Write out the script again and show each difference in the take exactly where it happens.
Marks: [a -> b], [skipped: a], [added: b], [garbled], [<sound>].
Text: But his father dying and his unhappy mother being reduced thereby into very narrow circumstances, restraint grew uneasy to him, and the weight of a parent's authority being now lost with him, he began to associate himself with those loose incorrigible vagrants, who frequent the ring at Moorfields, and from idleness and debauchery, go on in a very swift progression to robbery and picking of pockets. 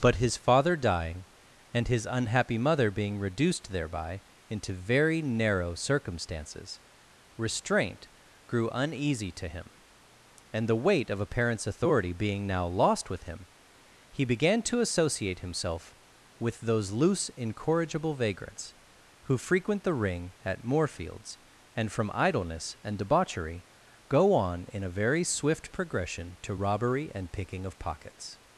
But his father dying and his unhappy mother being reduced thereby into very narrow circumstances, restraint grew uneasy to him, and the weight of a parent's authority being now lost with him, he began to associate himself with those loose incorrigible vagrants, who frequent the ring at Moorfields, and from idleness and debauchery, go on in a very swift progression to robbery and picking of pockets.